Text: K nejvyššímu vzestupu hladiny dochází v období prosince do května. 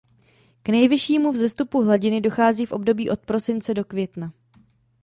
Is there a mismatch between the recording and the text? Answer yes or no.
yes